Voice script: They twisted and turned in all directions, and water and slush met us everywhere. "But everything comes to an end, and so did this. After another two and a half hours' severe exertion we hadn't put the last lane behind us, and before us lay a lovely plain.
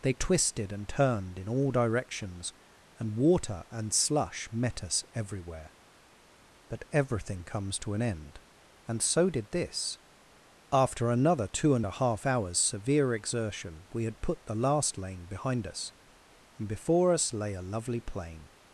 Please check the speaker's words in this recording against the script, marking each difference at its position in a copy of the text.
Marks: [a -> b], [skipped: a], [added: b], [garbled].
They twisted and turned in all directions, and water and slush met us everywhere. "But everything comes to an end, and so did this. After another two and a half hours' severe exertion we [hadn't -> had] put the last lane behind us, and before us lay a lovely plain.